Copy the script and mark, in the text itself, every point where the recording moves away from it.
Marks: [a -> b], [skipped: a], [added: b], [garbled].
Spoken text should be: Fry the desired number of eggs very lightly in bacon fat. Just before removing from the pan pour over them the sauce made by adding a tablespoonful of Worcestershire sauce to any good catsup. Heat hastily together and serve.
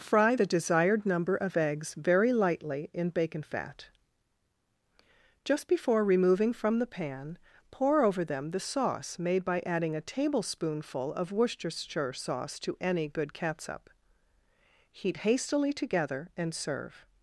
Fry the desired number of eggs very lightly in bacon fat. Just before removing from the pan pour over them the sauce made by adding a tablespoonful of Worcestershire sauce to any good catsup. Heat hastily together and serve.